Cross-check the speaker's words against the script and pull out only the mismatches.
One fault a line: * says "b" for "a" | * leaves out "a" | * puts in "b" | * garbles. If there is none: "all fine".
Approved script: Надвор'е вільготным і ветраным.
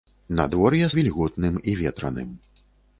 all fine